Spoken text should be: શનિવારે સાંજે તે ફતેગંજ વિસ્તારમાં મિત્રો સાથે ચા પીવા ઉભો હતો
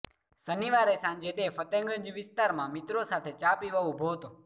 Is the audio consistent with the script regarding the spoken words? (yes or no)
yes